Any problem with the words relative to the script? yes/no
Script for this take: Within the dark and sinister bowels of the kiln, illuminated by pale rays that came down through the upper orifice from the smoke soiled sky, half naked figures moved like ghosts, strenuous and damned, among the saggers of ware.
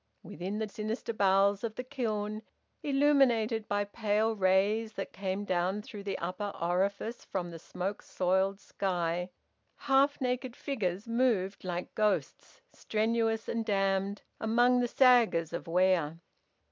yes